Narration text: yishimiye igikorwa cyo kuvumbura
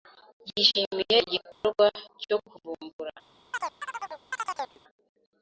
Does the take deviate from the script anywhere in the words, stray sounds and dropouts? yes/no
yes